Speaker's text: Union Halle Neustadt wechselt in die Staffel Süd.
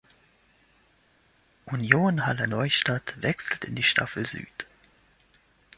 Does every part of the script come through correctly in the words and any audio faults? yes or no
yes